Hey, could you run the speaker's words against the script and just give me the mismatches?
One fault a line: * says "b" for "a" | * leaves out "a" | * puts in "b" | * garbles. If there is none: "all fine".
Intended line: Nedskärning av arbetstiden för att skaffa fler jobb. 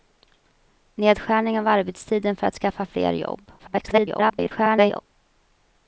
* garbles